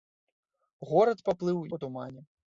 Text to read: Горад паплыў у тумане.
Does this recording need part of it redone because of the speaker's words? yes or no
no